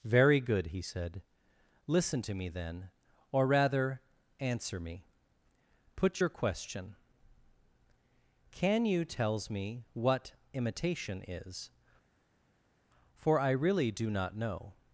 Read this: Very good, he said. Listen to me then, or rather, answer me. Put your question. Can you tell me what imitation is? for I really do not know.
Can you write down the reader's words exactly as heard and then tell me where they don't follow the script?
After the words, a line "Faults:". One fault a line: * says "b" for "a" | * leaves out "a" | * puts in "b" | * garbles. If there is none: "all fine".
Very good, he said. Listen to me then, or rather, answer me. Put your question. Can you tells me what imitation is? for I really do not know.
Faults:
* says "tells" for "tell"